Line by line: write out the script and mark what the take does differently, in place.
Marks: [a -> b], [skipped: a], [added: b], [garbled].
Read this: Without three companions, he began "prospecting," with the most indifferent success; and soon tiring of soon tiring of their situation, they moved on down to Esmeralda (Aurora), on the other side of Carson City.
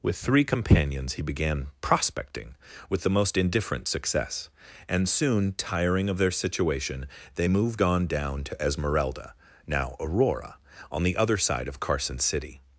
[Without -> With] three companions, he began "prospecting," with the most indifferent success; and soon tiring of [skipped: soon tiring of] their situation, they moved on down to Esmeralda [added: now] (Aurora), on the other side of Carson City.